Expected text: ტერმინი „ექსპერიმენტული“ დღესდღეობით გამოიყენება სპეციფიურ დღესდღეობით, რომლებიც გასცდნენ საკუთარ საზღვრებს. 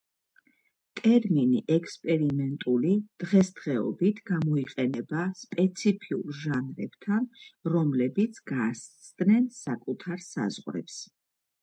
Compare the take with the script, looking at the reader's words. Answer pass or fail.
fail